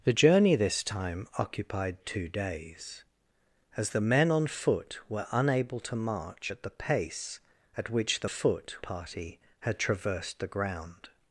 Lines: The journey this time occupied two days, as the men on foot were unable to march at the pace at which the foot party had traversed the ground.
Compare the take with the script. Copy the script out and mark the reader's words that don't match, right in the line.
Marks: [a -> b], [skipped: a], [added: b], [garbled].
The journey this time occupied two days, as the men on foot were unable to march at the pace at which the foot party had traversed the ground.